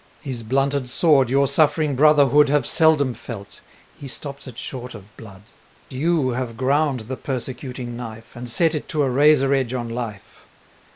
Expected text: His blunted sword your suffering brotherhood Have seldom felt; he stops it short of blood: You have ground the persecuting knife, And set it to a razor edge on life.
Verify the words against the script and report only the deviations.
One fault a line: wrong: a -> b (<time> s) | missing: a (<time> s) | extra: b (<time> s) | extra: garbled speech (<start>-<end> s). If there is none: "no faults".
no faults